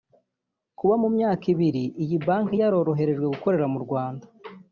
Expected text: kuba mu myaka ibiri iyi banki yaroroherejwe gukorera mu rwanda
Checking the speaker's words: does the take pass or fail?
pass